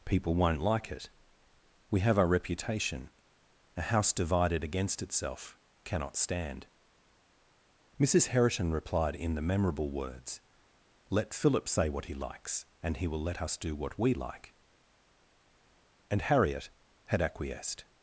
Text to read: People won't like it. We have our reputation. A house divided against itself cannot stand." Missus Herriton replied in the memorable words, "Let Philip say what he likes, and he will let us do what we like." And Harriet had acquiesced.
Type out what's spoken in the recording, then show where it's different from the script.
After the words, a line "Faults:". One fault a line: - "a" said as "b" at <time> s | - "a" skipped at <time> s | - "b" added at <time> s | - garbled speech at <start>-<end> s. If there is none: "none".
People won't like it. We have our reputation. A house divided against itself cannot stand." Missus Herriton replied in the memorable words, "Let Philip say what he likes, and he will let us do what we like." And Harriet had acquiesced.
Faults:
none